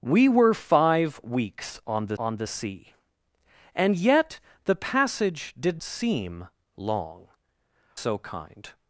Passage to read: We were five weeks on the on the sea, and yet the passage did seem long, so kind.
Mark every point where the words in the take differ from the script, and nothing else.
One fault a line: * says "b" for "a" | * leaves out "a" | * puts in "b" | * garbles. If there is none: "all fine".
all fine